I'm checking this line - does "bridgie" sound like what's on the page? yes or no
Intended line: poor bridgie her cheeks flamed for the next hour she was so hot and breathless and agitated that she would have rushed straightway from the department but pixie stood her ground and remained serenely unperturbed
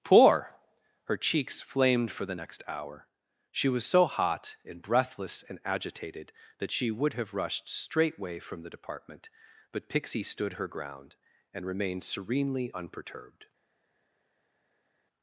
no